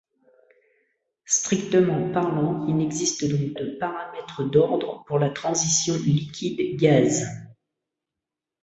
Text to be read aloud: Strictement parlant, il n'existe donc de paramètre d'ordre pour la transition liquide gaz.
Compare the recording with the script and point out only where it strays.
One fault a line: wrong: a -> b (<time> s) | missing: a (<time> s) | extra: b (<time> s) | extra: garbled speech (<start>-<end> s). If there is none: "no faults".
no faults